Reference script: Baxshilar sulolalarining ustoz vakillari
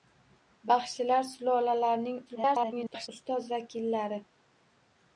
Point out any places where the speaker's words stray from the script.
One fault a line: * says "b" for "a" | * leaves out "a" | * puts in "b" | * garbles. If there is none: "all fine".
* garbles